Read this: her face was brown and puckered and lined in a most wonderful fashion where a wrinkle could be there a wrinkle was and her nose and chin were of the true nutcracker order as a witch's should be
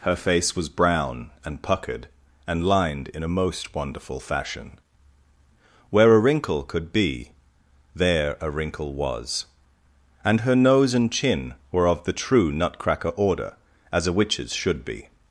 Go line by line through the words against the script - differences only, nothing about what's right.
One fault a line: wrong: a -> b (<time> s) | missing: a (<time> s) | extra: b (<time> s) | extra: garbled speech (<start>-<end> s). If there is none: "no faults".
no faults